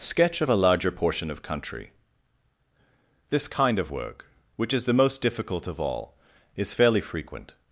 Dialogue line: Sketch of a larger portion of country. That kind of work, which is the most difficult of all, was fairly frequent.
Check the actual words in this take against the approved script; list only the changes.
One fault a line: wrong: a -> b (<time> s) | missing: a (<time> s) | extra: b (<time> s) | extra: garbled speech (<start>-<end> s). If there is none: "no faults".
wrong: That -> This (3.3 s)
wrong: was -> is (6.6 s)